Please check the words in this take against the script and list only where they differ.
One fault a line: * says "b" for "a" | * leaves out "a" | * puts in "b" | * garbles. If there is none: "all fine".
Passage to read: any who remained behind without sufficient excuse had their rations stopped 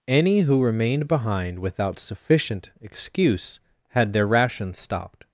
all fine